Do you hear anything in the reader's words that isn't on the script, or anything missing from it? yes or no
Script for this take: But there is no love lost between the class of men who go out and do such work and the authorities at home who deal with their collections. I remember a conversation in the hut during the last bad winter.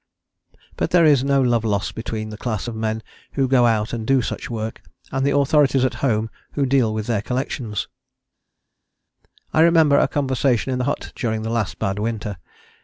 no